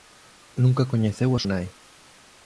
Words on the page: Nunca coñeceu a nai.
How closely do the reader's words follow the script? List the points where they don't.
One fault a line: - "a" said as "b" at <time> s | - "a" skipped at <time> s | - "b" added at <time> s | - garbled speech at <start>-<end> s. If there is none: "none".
none